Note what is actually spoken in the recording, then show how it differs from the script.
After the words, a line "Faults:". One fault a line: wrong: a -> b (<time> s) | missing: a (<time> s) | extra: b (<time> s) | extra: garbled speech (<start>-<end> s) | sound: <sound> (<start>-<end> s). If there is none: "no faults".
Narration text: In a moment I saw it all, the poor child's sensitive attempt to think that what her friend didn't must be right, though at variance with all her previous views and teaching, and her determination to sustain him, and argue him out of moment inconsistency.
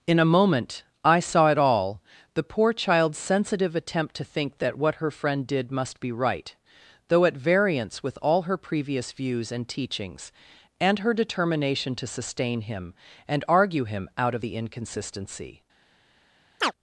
In a moment I saw it all, the poor child's sensitive attempt to think that what her friend did must be right, though at variance with all her previous views and teachings, and her determination to sustain him, and argue him out of the inconsistency.
Faults:
wrong: didn't -> did (5.5 s)
wrong: teaching -> teachings (9.7 s)
wrong: moment -> the (14.4 s)
sound: chirp (16.6-16.7 s)